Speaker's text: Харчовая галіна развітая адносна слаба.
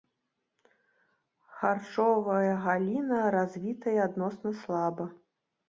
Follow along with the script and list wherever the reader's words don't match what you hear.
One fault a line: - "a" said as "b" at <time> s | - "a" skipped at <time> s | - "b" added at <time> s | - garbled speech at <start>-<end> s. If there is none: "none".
none